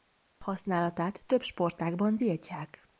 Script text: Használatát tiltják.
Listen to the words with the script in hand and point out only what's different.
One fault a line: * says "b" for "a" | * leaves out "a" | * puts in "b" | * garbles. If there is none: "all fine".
* puts in "több sportágban"